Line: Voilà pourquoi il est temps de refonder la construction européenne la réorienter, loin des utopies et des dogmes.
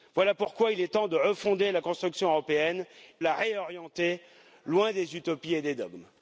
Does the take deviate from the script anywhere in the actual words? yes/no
no